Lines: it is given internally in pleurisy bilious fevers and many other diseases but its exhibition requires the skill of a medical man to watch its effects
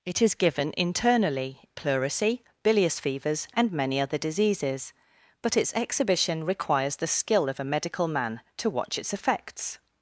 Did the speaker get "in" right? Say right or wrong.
wrong